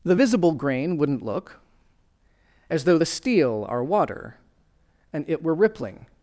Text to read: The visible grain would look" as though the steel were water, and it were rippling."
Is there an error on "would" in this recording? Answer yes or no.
yes